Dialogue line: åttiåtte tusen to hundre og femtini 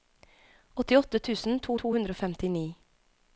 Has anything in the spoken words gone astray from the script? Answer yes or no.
yes